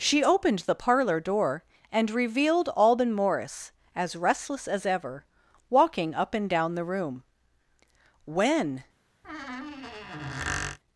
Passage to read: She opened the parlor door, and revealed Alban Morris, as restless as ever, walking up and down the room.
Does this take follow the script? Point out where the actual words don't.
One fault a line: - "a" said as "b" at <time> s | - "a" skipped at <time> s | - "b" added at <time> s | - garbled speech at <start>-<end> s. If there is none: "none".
- "When" added at 8.2 s